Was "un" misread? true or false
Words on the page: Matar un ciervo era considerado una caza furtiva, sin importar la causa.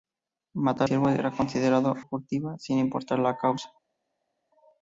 true